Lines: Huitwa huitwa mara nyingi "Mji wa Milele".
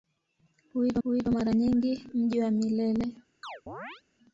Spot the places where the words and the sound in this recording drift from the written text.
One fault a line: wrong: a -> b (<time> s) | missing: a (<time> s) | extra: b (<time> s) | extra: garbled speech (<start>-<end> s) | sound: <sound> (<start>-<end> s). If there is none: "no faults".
sound: chirp (3.4-4.0 s)